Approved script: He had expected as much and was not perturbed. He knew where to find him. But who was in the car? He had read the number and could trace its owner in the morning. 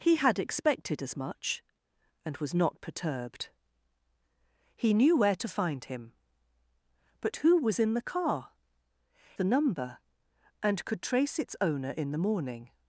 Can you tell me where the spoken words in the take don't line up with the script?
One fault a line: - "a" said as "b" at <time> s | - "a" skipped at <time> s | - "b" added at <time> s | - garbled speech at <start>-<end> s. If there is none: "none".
- "He had read" skipped at 8.5 s